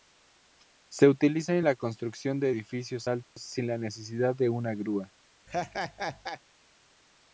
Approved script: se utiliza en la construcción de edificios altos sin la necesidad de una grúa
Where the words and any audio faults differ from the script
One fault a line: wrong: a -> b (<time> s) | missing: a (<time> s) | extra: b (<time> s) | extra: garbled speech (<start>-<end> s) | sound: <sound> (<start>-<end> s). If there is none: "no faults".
sound: dropout (3.2-3.4 s)
sound: laugh (5.5-6.4 s)